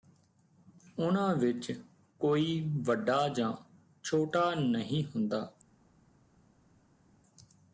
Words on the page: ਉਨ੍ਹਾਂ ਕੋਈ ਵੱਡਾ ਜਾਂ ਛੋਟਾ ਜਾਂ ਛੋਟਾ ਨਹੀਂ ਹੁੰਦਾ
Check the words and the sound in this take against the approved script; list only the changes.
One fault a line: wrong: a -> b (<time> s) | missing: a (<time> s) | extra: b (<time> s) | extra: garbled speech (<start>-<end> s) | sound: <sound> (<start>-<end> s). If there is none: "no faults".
extra: ਵਿਚ (1.4 s)
missing: ਜਾਂ ਛੋਟਾ (4.5 s)